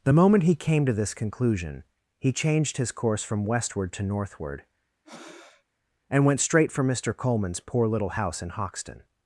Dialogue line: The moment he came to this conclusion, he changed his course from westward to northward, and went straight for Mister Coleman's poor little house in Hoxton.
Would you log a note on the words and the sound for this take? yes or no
yes